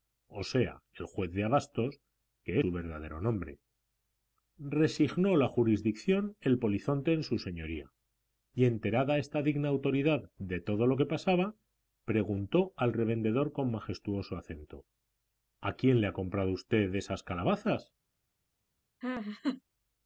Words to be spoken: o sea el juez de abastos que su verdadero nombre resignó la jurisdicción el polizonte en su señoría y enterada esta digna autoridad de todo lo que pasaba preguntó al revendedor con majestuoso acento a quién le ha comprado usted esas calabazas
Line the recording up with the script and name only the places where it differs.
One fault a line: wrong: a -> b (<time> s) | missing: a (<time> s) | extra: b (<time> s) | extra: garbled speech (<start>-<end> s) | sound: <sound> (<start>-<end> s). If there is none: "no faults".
sound: laugh (19.0-19.6 s)